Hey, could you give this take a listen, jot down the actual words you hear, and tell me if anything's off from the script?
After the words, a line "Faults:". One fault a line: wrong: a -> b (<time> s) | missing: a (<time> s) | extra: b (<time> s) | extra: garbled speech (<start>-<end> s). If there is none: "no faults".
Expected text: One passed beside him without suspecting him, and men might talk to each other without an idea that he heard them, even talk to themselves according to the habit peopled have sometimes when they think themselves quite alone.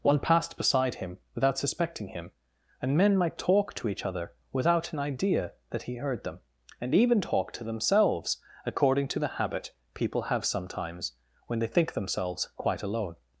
One passed beside him without suspecting him, and men might talk to each other without an idea that he heard them, and even talk to themselves according to the habit people have sometimes when they think themselves quite alone.
Faults:
extra: and (6.8 s)
wrong: peopled -> people (9.9 s)